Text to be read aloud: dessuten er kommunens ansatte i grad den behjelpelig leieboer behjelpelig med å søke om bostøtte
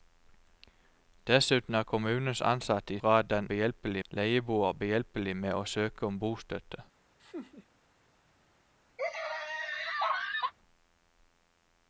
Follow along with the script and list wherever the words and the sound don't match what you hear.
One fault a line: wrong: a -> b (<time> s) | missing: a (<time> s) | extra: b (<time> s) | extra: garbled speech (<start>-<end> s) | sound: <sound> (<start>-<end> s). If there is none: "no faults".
sound: laugh (7.2-7.7 s)
sound: laugh (9.0-10.5 s)